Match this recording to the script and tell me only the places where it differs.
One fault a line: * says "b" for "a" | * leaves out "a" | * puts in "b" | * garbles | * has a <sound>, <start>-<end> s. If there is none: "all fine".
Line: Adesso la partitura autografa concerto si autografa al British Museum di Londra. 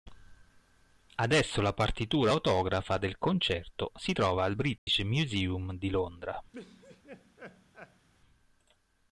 * puts in "del"
* says "trova" for "autografa"
* has a dropout, 4.8-4.9 s
* has a laugh, 6.5-8.1 s